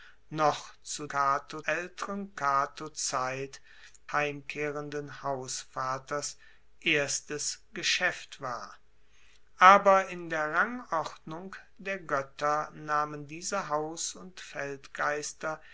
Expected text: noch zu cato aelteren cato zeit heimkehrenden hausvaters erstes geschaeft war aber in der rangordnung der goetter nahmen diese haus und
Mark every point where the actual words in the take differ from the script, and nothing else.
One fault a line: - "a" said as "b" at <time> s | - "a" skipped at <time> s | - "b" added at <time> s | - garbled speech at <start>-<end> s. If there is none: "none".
none